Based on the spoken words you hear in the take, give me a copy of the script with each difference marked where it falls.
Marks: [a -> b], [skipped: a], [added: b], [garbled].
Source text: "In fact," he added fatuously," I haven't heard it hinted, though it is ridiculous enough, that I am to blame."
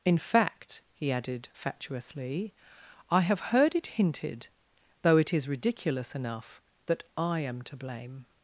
"In fact," he added fatuously," I [haven't -> have] heard it hinted, though it is ridiculous enough, that I am to blame."